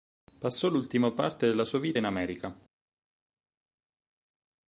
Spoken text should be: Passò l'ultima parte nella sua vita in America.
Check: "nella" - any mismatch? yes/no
yes